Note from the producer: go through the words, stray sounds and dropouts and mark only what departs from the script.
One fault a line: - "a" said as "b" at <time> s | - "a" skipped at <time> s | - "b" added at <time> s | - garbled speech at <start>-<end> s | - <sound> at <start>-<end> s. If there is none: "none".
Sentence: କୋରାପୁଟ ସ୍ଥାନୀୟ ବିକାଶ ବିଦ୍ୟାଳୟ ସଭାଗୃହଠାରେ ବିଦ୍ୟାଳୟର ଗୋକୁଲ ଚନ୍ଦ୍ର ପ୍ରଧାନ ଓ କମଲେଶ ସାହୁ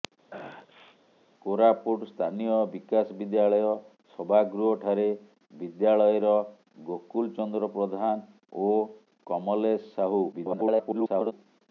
- sneeze at 0.3-1.0 s
- garbled speech at 10.3-11.3 s